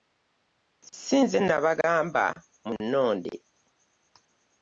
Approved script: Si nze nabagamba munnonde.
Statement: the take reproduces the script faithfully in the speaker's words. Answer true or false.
true